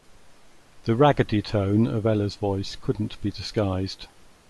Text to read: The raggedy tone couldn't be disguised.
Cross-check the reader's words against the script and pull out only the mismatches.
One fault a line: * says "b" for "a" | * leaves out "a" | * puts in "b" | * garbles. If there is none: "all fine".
* puts in "of Ella's voice"